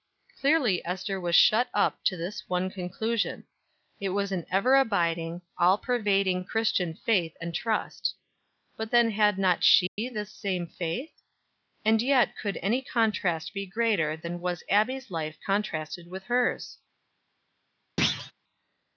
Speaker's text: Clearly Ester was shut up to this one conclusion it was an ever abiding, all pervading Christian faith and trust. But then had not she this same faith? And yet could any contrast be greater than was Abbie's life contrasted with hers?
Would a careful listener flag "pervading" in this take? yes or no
no